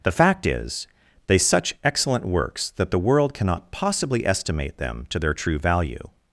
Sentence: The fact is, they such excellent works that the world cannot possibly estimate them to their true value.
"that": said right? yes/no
yes